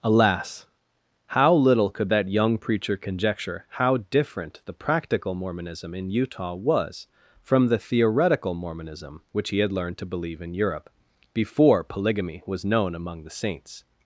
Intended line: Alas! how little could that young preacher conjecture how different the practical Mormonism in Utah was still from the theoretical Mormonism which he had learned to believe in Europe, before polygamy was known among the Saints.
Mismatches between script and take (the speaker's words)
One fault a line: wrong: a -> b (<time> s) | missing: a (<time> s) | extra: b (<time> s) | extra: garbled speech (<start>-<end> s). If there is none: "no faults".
missing: still (7.0 s)